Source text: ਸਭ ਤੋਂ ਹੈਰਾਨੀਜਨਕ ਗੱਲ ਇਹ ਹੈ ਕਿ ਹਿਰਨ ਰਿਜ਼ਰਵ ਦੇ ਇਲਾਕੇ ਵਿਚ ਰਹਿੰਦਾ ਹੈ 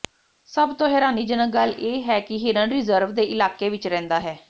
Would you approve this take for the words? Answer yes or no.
yes